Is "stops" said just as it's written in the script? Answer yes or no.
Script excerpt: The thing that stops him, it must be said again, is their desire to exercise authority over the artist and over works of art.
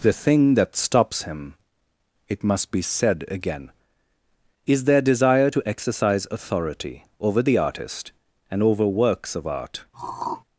yes